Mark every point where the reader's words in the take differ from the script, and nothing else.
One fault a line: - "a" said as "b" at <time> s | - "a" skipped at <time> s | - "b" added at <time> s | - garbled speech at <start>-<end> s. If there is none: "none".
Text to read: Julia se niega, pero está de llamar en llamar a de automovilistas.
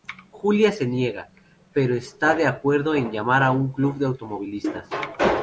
- "llamar" said as "acuerdo" at 2.5 s
- "un club" added at 3.5 s